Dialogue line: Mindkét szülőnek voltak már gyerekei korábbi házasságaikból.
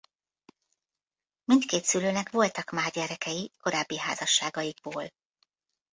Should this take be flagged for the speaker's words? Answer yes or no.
no